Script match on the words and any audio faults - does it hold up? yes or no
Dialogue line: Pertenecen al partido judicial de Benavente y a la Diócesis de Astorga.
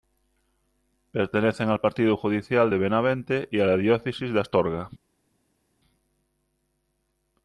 yes